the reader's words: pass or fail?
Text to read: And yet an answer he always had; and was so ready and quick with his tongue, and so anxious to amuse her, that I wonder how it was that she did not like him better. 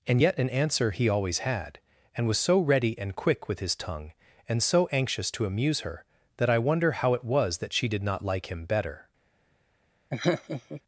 pass